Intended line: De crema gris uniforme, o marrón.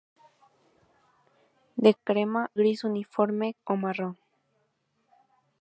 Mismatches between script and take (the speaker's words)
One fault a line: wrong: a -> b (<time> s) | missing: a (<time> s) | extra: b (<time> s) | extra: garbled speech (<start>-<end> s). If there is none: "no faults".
no faults